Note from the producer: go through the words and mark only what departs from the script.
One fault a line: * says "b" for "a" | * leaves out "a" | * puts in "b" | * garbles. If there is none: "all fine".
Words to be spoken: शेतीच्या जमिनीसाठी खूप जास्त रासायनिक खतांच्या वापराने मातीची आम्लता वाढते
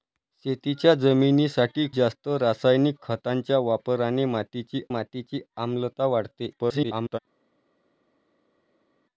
* leaves out "खूप"
* puts in "मातीची"
* garbles